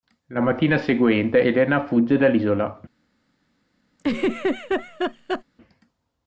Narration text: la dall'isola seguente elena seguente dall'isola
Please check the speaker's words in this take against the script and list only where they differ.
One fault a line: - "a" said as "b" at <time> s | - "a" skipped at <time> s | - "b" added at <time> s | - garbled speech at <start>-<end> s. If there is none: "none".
- "dall'isola" said as "mattina" at 0.4 s
- "seguente" said as "fugge" at 1.9 s